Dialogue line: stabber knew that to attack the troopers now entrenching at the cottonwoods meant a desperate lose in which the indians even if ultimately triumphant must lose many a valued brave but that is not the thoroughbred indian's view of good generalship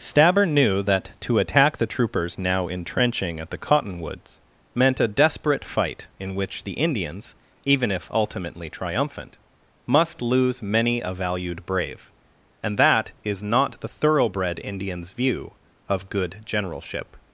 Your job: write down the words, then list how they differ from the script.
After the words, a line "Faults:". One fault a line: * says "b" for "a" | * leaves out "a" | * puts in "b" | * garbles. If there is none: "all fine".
stabber knew that to attack the troopers now entrenching at the cottonwoods meant a desperate fight in which the indians even if ultimately triumphant must lose many a valued brave and that is not the thoroughbred indian's view of good generalship
Faults:
* says "fight" for "lose"
* says "and" for "but"